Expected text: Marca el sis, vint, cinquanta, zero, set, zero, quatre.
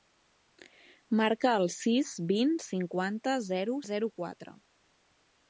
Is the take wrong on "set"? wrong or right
wrong